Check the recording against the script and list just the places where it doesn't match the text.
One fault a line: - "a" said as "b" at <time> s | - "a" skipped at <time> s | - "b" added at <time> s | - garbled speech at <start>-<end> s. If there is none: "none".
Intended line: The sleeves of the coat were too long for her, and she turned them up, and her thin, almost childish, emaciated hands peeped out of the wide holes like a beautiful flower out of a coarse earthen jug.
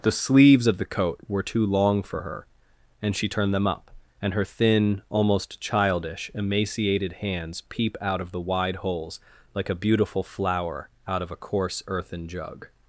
- "peeped" said as "peep" at 7.7 s